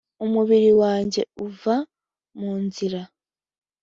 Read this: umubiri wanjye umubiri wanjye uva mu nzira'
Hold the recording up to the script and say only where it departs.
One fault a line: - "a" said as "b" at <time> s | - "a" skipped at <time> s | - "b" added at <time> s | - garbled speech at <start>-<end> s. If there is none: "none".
- "umubiri wanjye" skipped at 1.2 s